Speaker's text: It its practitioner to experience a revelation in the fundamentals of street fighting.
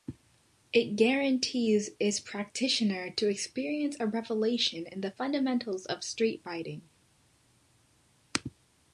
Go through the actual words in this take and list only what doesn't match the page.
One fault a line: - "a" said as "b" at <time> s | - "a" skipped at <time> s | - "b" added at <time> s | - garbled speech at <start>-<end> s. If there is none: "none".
- "guarantees" added at 0.9 s